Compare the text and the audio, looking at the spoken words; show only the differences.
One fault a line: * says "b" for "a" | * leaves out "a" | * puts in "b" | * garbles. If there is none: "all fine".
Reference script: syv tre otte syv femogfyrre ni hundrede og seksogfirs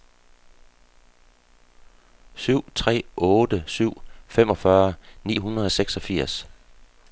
all fine